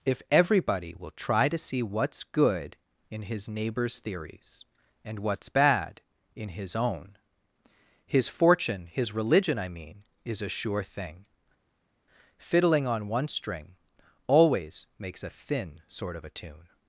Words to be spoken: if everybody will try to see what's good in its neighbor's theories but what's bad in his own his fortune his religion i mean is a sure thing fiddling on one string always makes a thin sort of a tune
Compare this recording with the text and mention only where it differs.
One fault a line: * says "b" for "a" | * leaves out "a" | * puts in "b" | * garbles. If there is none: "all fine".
* says "his" for "its"
* says "and" for "but"